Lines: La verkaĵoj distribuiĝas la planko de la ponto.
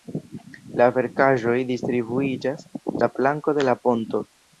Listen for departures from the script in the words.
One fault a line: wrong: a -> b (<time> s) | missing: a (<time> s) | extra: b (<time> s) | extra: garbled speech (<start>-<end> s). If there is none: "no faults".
no faults